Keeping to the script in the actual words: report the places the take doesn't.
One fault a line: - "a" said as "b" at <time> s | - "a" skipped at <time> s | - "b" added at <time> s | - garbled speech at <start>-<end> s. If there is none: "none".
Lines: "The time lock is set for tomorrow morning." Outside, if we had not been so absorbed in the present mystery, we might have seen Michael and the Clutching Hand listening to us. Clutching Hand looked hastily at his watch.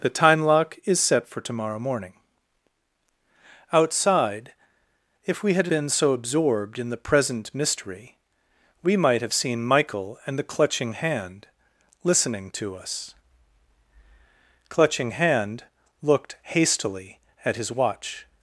- "not" skipped at 5.7 s